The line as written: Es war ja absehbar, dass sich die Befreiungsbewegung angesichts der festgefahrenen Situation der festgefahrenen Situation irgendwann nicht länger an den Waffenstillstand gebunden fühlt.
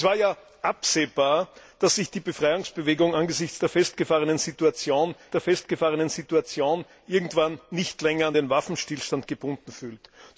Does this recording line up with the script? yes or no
yes